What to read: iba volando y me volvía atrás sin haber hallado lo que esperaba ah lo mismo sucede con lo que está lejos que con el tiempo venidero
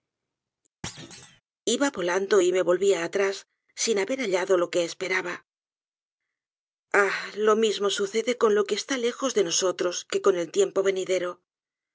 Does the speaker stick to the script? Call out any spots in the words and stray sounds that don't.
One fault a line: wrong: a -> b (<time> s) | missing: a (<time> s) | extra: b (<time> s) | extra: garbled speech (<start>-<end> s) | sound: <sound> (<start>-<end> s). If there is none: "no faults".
sound: thud (0.8-1.4 s)
extra: de nosotros (9.3 s)